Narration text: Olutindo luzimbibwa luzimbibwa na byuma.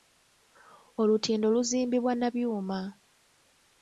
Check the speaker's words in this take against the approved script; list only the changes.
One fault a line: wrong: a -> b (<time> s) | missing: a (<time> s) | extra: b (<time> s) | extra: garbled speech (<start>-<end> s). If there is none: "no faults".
missing: luzimbibwa (2.1 s)